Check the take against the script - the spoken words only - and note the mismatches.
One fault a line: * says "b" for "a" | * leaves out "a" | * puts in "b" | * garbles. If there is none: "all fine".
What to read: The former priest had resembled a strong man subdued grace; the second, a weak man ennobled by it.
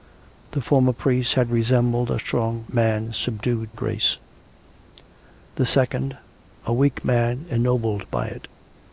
all fine